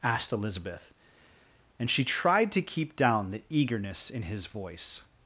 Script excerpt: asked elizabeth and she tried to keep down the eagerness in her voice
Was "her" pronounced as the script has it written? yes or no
no